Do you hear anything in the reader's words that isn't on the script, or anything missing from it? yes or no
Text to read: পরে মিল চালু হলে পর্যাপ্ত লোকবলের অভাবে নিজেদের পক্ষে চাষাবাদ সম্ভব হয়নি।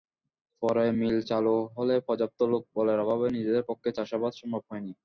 no